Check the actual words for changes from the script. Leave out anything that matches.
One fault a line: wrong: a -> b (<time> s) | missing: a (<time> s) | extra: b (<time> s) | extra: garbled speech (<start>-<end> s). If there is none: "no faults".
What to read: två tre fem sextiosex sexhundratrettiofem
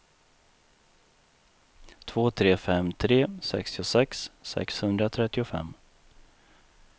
extra: tre (2.9 s)